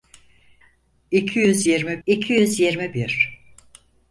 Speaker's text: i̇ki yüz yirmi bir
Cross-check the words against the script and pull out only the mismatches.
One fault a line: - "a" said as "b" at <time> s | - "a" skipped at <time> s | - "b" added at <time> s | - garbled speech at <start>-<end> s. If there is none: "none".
- "i̇ki yüz yirmi" added at 2.1 s